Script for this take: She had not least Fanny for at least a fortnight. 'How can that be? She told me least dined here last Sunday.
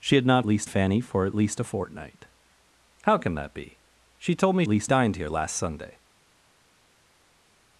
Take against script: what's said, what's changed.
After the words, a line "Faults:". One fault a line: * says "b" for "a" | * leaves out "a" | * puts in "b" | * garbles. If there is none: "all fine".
She had not least Fanny for at least a fortnight. 'How can that be? She told me least dined here last Sunday.
Faults:
all fine